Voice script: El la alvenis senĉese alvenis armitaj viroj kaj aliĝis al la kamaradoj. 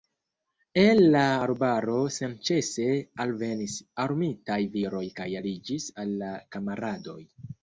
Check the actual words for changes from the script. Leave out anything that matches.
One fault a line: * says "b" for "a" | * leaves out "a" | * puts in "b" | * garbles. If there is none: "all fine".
* says "arbaro" for "alvenis"